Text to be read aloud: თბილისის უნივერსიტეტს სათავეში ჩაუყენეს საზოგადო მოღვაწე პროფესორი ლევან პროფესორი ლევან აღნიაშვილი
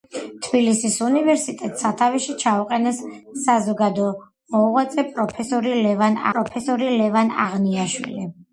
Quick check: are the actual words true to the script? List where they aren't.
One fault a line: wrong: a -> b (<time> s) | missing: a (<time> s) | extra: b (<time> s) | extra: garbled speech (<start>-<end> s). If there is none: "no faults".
no faults